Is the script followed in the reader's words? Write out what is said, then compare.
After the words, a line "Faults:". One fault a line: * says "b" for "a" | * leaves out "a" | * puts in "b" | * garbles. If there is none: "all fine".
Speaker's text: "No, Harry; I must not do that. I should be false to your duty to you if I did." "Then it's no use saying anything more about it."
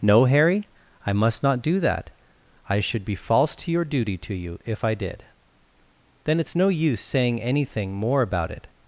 "No, Harry; I must not do that. I should be false to your duty to you if I did." "Then it's no use saying anything more about it."
Faults:
all fine